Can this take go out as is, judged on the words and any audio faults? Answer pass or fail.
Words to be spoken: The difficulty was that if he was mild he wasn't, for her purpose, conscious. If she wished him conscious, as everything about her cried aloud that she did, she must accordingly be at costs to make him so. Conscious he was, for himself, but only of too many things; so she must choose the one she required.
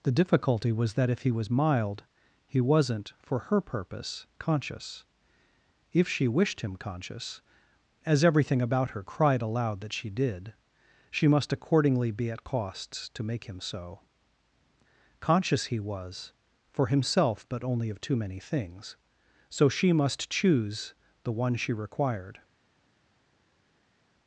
pass